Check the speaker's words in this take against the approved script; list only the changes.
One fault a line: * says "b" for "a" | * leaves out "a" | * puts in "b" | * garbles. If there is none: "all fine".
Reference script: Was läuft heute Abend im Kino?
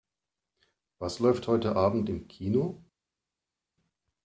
all fine